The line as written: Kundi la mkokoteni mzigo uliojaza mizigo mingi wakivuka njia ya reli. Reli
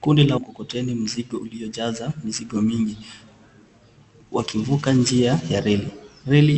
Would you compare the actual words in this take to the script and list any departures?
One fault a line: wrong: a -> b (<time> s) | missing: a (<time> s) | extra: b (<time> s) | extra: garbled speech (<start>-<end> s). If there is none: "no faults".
no faults